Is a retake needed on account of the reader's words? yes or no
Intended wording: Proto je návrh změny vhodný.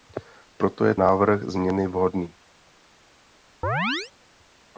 no